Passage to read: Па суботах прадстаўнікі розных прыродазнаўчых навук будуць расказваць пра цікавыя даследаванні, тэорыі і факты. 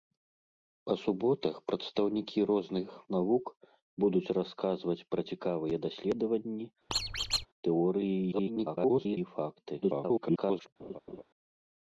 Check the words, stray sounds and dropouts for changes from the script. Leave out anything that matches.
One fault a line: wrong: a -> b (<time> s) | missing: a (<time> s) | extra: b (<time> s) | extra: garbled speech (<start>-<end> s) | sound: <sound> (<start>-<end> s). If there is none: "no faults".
missing: прыродазнаўчых (2.9 s)
sound: squeak (6.9-7.5 s)
extra: garbled speech (8.3-9.2 s)
extra: garbled speech (9.8-10.7 s)
sound: laugh (10.8-11.2 s)